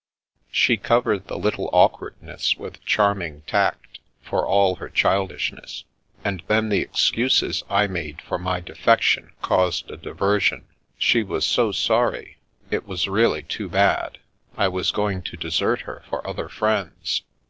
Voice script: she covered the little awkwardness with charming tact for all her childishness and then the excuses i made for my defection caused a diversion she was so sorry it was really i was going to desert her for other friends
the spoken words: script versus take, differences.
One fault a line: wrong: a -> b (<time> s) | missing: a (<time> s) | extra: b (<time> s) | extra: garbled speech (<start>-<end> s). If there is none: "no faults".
extra: too bad (13.4 s)